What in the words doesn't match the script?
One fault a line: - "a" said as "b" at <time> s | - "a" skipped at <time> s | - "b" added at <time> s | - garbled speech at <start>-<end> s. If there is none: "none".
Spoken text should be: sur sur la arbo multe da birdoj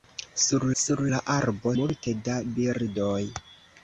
none